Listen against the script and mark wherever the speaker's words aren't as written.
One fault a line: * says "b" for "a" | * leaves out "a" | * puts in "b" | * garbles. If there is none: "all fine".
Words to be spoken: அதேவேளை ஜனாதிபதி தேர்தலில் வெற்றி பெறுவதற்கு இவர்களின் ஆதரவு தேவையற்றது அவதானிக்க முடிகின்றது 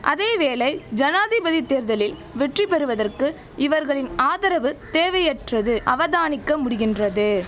all fine